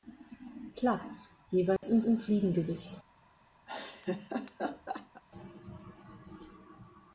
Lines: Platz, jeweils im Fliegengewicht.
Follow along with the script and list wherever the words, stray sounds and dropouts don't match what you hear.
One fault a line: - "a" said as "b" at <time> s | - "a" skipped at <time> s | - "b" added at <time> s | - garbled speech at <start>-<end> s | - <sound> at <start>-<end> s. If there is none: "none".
- dropout at 1.8-1.8 s
- "im" added at 2.0 s
- laugh at 3.7-5.2 s